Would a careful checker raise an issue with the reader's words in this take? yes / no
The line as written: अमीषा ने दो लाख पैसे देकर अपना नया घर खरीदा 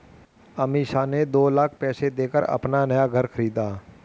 no